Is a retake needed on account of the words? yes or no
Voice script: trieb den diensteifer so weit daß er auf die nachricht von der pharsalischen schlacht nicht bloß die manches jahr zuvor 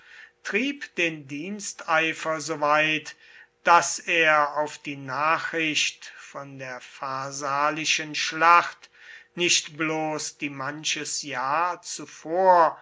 no